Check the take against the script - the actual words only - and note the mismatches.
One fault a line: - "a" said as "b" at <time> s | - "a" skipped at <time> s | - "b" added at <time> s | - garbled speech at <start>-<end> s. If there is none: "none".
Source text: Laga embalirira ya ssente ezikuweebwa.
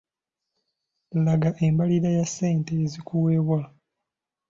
none